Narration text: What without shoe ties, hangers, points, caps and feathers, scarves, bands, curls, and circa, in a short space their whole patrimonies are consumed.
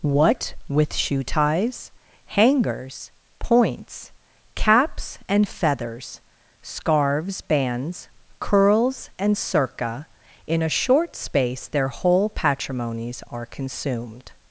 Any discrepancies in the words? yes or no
yes